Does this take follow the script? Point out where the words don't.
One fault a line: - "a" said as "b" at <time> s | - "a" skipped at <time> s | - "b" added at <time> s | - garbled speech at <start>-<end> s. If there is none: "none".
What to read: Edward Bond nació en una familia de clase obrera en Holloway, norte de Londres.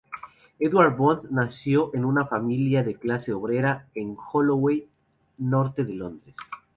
none